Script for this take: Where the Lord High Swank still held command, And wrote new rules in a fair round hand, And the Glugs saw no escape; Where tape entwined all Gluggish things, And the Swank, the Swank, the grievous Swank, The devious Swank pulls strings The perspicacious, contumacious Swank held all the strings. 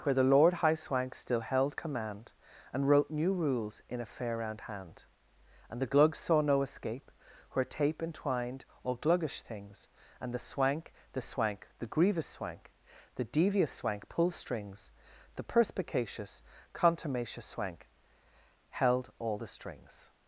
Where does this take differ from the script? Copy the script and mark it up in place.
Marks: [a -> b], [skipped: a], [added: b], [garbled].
Where the Lord High Swank still held command, And wrote new rules in a fair round hand, And the Glugs saw no escape; Where tape entwined all Gluggish things, And the Swank, the Swank, the grievous Swank, The devious Swank pulls strings The perspicacious, contumacious Swank held all the strings.